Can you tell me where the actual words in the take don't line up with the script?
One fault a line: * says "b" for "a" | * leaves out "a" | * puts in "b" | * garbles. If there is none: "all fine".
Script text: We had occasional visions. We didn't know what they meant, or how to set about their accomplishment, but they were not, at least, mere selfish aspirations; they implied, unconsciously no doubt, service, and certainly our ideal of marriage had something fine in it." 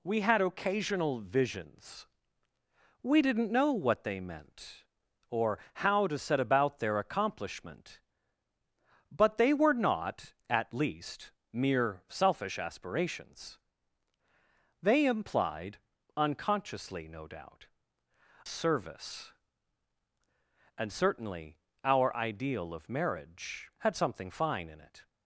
all fine